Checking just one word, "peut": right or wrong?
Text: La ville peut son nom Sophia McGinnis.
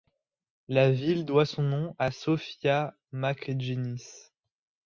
wrong